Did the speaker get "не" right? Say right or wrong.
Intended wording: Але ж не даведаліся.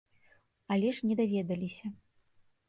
right